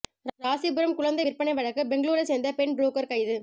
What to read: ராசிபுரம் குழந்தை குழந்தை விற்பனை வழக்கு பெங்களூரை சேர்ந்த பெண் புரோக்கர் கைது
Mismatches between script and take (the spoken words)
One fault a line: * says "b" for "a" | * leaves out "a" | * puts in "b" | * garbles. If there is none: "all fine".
* leaves out "குழந்தை"